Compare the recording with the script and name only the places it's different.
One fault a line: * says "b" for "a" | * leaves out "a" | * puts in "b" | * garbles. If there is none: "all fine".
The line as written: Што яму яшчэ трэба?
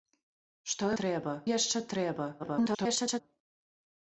* says "трэба" for "яму"
* garbles